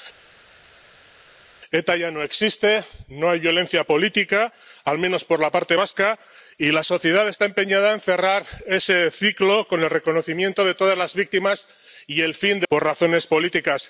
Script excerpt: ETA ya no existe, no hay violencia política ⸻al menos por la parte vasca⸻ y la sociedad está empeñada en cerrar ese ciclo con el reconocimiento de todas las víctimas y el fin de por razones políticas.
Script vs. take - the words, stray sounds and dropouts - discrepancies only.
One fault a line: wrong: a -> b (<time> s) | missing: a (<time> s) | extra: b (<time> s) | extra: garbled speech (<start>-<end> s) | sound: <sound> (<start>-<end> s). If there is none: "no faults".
no faults